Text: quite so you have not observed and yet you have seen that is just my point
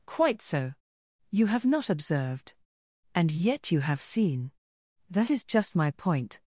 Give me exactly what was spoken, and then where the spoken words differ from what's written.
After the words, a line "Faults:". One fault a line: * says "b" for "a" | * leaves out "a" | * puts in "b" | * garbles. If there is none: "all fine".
quite so you have not observed and yet you have seen that is just my point
Faults:
all fine